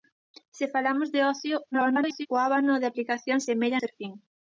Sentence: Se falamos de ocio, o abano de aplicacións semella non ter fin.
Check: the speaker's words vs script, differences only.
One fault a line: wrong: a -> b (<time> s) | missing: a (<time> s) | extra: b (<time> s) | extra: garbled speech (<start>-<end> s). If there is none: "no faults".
extra: garbled speech (1.7-2.3 s)
missing: non (3.8 s)